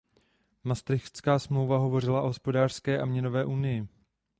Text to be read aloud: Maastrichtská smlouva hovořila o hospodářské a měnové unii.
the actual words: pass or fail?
pass